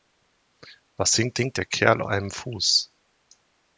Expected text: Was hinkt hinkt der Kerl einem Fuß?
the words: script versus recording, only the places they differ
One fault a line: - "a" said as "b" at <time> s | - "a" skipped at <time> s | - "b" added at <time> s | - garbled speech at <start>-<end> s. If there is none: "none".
none